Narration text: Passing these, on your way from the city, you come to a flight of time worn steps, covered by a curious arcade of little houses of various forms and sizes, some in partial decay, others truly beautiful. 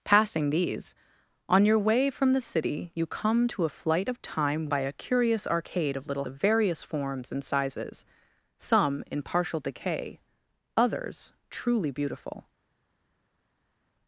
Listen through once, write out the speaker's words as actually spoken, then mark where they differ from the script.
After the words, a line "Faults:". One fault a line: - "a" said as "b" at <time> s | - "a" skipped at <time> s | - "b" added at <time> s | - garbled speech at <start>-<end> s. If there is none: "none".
Passing these, on your way from the city, you come to a flight of time by a curious arcade of little of various forms and sizes, some in partial decay, others truly beautiful.
Faults:
- "worn steps covered" skipped at 4.7 s
- "houses" skipped at 6.2 s